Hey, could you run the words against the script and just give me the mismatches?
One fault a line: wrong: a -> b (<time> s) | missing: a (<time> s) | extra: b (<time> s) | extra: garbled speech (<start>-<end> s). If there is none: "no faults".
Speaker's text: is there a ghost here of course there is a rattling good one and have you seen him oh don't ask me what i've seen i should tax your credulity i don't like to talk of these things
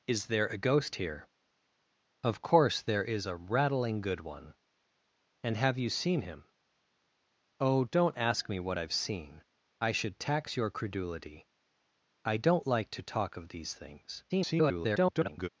extra: garbled speech (14.3-15.5 s)